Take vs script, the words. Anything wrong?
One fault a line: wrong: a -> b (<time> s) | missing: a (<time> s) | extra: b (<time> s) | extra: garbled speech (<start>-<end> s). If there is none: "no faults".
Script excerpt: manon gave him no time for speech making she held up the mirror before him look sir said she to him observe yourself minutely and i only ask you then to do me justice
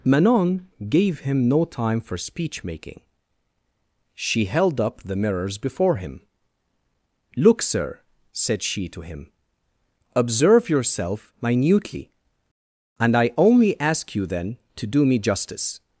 wrong: mirror -> mirrors (5.2 s)